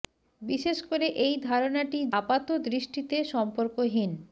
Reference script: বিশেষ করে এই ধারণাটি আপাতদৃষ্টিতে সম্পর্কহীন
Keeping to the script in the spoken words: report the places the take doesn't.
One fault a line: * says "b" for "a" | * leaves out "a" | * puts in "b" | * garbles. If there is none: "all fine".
all fine